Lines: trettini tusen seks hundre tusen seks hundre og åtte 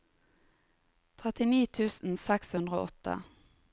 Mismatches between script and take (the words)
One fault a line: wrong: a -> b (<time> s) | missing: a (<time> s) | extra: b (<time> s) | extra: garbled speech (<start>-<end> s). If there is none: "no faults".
missing: tusen seks hundre (2.8 s)